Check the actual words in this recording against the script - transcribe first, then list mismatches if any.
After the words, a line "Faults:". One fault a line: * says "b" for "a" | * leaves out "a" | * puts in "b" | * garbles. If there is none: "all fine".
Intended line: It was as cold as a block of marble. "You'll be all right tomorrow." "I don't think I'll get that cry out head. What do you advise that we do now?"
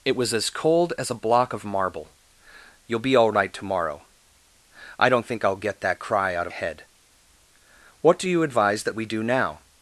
It was as cold as a block of marble. "You'll be all right tomorrow." "I don't think I'll get that cry out head. What do you advise that we do now?"
Faults:
all fine